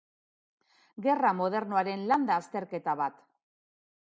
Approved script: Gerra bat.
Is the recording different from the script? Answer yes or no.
yes